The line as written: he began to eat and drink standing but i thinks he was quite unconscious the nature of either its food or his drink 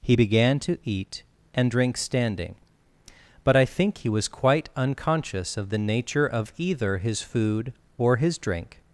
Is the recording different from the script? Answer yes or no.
yes